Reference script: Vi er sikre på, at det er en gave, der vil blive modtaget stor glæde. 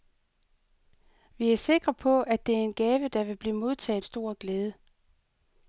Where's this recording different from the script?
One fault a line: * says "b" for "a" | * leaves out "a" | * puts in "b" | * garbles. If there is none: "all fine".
all fine